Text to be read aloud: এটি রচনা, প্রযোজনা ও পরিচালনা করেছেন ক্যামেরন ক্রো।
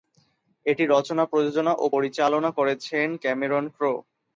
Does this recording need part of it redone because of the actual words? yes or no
no